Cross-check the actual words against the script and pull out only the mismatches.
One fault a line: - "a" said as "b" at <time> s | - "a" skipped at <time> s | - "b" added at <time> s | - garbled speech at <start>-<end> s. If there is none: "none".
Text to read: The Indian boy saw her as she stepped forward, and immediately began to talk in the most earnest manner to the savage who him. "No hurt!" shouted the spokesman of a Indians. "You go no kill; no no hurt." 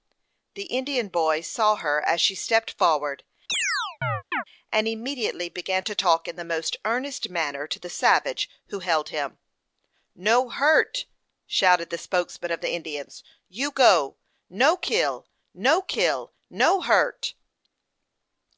- "held" added at 8.8 s
- "a" said as "the" at 12.6 s
- "kill" added at 15.8 s